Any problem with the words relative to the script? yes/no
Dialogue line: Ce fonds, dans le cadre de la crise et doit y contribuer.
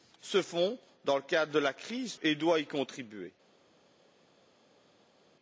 no